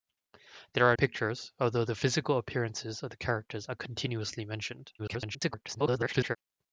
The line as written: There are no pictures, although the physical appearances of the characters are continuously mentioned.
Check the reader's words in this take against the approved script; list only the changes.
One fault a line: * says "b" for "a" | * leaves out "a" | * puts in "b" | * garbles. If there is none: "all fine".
* leaves out "no"
* garbles